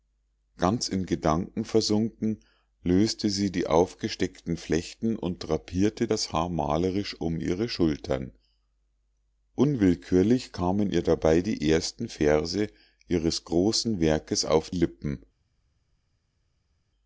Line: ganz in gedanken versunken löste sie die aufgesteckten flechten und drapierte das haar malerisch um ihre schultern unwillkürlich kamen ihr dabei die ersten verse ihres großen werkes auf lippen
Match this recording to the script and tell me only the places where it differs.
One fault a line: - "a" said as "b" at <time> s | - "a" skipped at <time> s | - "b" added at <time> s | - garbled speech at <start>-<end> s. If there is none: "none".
none